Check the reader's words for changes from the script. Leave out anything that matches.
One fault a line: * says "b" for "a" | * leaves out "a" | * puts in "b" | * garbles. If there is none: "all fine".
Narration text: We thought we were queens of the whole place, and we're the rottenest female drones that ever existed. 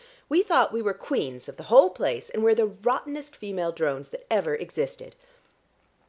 all fine